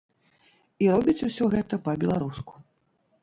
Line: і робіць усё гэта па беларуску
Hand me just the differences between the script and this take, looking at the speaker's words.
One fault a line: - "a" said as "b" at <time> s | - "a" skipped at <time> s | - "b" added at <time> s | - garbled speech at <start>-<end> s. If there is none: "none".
none